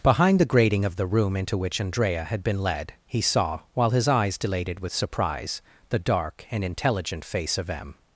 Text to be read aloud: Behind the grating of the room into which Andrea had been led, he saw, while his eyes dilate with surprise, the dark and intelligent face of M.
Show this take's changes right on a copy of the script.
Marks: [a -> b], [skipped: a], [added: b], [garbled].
Behind the grating of the room into which Andrea had been led, he saw, while his eyes [dilate -> dilated] with surprise, the dark and intelligent face of M.